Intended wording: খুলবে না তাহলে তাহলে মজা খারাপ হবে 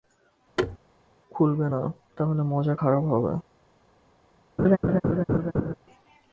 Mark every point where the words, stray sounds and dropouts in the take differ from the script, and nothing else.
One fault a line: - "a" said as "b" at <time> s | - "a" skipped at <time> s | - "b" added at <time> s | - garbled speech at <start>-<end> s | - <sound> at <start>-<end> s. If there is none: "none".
- thud at 0.6-0.8 s
- "তাহলে" skipped at 2.4 s
- laugh at 4.6-5.7 s